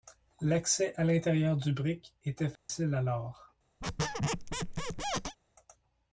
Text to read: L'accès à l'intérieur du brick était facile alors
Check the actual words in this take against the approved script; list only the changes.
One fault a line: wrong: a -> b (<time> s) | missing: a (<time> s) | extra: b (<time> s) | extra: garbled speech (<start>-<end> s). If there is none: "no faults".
no faults